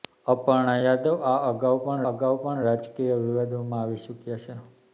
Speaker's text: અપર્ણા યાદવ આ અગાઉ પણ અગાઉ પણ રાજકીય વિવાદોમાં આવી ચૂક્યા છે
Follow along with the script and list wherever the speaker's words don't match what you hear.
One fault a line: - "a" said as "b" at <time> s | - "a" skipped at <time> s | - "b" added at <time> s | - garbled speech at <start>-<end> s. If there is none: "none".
none